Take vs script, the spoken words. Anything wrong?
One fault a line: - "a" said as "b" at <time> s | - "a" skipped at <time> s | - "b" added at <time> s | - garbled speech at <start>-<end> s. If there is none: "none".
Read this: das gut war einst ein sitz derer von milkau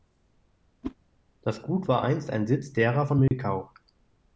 none